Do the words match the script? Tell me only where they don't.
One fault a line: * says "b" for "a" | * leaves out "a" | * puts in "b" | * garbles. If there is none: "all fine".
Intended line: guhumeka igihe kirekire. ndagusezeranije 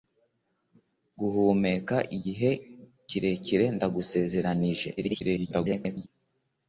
* garbles